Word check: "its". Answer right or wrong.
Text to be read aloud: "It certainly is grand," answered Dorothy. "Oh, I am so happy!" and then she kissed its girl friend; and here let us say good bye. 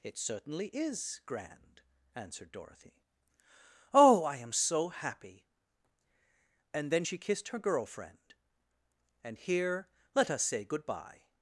wrong